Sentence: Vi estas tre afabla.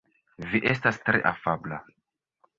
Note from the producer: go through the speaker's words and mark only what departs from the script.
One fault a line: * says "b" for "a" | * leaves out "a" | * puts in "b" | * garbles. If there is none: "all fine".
all fine